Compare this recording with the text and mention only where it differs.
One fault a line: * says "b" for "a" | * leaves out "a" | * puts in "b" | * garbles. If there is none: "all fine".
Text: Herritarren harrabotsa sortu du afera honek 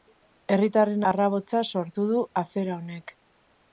all fine